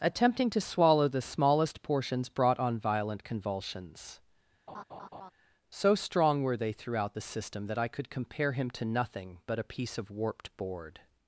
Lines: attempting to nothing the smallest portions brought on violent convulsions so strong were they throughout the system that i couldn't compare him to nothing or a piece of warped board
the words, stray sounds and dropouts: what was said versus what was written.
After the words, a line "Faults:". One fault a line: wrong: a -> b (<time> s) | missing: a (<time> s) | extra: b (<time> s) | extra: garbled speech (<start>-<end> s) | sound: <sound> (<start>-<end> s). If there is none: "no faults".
attempting to swallow the smallest portions brought on violent convulsions so strong were they throughout the system that i could compare him to nothing but a piece of warped board
Faults:
wrong: nothing -> swallow (0.6 s)
sound: laugh (4.7-5.3 s)
wrong: couldn't -> could (7.9 s)
wrong: or -> but (9.5 s)